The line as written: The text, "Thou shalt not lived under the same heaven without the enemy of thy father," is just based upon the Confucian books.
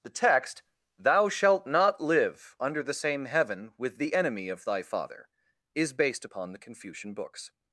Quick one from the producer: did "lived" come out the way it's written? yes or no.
no